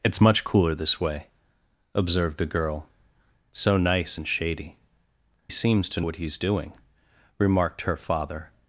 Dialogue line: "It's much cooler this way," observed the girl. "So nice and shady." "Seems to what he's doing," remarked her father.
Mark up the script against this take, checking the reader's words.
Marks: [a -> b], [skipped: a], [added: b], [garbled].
"It's much cooler this way," observed the girl. "So nice and shady." "Seems to what he's doing," remarked her father.